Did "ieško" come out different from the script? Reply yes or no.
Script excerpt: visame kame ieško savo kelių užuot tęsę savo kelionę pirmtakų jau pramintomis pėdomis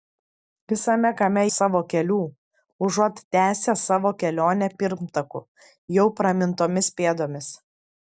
yes